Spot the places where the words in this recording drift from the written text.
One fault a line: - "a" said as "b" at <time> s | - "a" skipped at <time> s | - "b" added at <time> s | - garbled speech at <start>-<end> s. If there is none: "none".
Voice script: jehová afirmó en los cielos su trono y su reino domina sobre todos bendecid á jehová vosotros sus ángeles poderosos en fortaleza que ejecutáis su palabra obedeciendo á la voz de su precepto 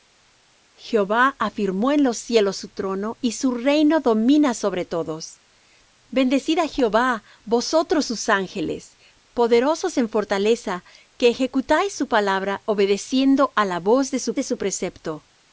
- "de su" added at 14.3 s